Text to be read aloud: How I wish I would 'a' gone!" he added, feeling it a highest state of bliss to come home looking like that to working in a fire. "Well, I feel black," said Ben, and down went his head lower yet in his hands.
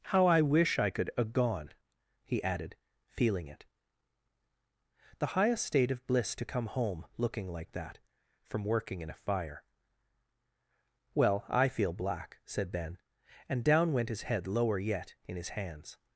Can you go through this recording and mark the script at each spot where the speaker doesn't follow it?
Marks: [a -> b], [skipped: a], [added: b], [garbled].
How I wish I [would -> could] 'a' gone!" he added, feeling it [a -> the] highest state of bliss to come home looking like that [to -> from] working in a fire. "Well, I feel black," said Ben, and down went his head lower yet in his hands.